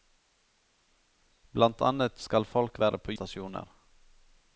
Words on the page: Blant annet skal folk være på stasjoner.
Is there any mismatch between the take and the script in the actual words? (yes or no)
no